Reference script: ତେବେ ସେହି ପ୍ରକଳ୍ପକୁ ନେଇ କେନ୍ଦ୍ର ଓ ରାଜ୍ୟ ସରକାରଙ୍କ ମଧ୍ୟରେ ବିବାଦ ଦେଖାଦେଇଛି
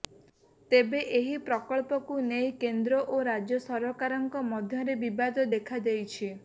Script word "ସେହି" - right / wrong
wrong